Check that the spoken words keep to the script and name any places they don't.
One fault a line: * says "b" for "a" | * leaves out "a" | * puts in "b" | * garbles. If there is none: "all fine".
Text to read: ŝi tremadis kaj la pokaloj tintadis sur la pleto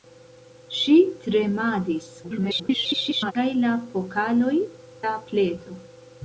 * garbles
* leaves out "tintadis sur"